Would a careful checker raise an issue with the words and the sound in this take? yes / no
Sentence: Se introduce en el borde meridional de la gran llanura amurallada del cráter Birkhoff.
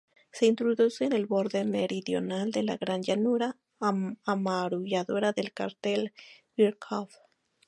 no